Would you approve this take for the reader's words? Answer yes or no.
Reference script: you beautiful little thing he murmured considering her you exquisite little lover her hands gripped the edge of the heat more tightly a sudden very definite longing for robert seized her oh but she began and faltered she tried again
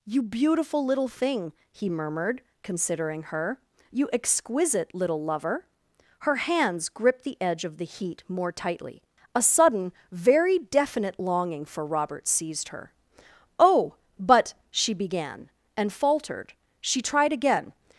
yes